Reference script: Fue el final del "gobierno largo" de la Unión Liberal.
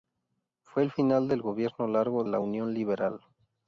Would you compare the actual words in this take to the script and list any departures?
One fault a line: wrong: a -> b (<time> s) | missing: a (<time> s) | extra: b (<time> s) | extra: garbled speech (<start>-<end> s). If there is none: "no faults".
missing: de (2.2 s)